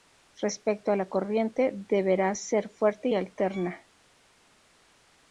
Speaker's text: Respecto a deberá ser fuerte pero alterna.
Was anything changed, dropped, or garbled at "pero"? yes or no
yes